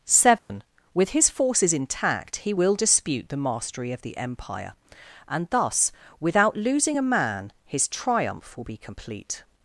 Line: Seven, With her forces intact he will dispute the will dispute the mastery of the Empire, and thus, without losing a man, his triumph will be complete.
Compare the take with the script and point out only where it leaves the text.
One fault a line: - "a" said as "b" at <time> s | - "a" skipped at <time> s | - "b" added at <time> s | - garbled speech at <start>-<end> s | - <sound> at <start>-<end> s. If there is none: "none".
- dropout at 0.4-0.5 s
- "her" said as "his" at 1.1 s
- "will dispute the" skipped at 3.4 s